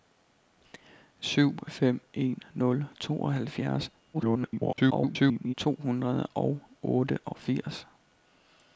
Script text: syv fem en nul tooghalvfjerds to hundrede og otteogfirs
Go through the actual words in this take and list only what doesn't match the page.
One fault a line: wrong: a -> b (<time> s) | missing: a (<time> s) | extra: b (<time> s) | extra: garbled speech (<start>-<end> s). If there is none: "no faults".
extra: garbled speech (4.1-5.5 s)